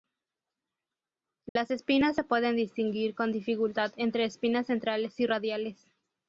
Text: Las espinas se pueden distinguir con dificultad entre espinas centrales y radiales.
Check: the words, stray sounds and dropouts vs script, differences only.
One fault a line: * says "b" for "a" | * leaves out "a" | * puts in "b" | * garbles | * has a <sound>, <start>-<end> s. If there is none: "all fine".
* has a dropout, 1.5-1.6 s